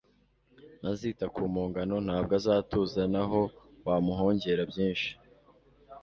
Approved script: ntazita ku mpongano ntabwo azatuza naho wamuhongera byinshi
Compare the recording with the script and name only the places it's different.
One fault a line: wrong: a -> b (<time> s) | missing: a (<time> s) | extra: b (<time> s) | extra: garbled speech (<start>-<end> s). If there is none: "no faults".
no faults